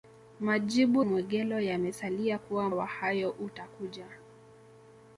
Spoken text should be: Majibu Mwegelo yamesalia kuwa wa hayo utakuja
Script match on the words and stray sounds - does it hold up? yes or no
yes